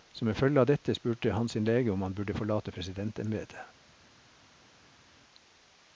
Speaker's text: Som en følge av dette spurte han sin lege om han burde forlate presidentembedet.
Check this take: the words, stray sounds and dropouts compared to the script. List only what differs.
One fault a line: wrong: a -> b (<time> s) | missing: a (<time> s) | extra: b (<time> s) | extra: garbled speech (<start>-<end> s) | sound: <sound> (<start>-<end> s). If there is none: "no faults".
no faults